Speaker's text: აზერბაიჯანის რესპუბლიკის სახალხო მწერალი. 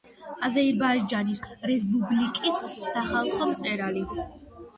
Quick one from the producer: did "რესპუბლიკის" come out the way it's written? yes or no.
yes